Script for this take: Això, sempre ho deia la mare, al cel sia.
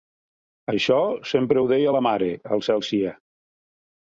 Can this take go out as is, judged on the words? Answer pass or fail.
pass